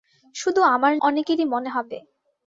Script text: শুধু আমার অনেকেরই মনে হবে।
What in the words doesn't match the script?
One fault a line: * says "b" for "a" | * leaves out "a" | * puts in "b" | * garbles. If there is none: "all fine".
all fine